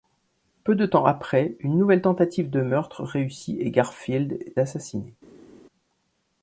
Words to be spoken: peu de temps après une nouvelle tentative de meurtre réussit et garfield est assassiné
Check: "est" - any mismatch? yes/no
yes